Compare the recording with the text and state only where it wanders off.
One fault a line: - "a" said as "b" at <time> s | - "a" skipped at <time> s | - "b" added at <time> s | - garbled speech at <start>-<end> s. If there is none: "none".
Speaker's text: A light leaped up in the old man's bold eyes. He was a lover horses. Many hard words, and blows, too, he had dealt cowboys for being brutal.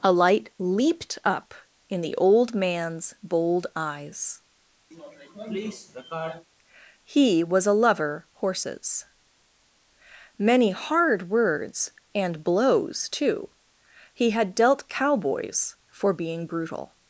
none